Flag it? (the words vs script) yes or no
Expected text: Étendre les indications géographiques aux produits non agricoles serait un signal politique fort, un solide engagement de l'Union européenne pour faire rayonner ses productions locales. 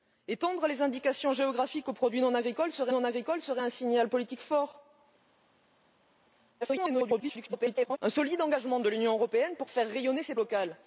yes